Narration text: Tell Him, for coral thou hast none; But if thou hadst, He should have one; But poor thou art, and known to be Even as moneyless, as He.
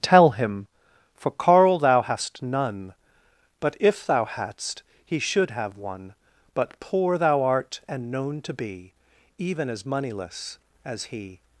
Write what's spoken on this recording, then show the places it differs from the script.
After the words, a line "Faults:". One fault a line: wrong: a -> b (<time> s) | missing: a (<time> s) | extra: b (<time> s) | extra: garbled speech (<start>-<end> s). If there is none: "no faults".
Tell Him, for carl thou hast none; But if thou hadst, He should have one; But poor thou art, and known to be Even as moneyless, as He.
Faults:
wrong: coral -> carl (1.3 s)